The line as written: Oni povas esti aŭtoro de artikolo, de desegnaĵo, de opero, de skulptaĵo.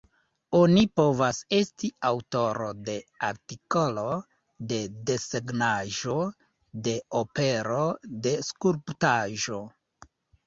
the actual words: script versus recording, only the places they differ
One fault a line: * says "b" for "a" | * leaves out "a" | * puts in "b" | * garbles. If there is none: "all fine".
all fine